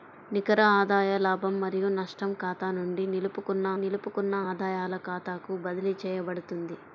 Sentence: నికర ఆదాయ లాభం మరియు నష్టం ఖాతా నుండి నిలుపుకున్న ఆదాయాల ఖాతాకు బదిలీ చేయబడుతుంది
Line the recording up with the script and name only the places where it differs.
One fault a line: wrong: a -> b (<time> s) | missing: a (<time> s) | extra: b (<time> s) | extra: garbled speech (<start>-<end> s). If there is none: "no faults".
extra: నిలుపుకున్న (3.8 s)